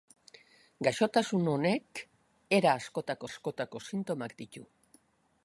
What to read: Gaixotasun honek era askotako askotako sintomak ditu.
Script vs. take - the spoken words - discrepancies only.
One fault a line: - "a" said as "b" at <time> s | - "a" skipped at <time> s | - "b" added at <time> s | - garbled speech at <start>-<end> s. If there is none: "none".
none